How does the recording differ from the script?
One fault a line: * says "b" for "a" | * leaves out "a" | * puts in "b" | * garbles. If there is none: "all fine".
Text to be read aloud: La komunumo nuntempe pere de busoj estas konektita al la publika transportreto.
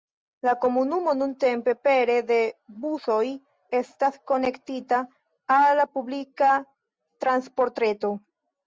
all fine